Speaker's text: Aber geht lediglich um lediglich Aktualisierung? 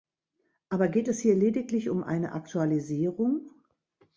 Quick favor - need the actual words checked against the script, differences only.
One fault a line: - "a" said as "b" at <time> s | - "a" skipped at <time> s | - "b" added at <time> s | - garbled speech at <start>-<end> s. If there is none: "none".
- "es hier" added at 1.1 s
- "lediglich" said as "eine" at 2.0 s